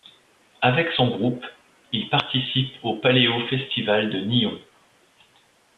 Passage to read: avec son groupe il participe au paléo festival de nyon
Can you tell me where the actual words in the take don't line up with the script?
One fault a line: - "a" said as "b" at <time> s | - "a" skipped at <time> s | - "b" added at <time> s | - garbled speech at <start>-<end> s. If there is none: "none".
none